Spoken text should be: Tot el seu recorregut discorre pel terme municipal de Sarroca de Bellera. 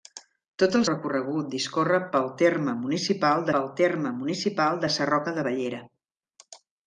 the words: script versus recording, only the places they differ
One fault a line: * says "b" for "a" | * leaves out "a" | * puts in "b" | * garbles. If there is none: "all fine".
* leaves out "seu"
* puts in "pel terme municipal"